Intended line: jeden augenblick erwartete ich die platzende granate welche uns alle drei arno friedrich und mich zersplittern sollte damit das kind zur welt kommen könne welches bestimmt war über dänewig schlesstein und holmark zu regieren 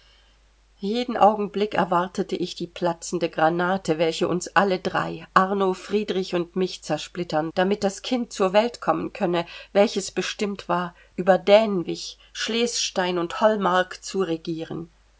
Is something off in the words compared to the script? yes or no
yes